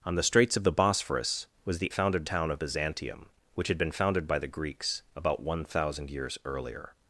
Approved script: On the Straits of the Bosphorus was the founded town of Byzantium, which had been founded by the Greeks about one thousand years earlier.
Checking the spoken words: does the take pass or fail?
pass